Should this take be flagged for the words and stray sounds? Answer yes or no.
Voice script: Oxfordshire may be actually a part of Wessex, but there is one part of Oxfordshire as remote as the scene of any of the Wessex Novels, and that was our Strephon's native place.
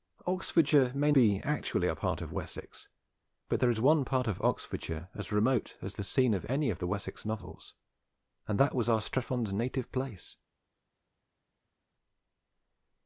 no